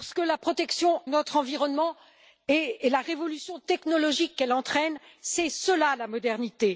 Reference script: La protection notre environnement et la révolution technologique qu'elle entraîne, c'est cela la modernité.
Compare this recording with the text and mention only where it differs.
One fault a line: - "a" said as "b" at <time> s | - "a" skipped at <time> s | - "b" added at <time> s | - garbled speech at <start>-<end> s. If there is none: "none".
none